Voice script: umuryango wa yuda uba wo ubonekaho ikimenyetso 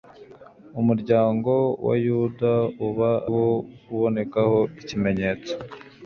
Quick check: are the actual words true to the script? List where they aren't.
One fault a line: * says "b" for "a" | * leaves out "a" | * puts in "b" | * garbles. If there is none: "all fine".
all fine